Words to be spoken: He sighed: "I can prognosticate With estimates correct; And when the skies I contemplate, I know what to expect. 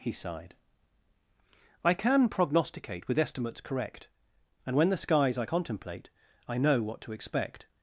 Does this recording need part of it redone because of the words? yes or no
no